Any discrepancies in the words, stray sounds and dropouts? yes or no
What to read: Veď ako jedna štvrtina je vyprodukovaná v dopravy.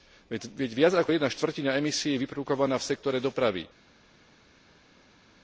yes